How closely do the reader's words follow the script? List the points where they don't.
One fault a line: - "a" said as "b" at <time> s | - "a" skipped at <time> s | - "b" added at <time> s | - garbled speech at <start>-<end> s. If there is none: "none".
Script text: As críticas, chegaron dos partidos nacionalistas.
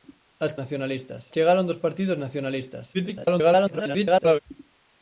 - "críticas" said as "nacionalistas" at 0.6 s
- garbled speech at 2.9-4.4 s